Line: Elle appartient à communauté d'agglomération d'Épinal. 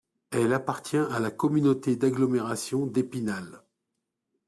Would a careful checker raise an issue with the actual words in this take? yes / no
yes